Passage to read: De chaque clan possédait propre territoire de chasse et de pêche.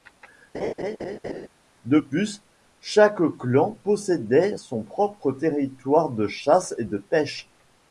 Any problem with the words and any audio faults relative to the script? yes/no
yes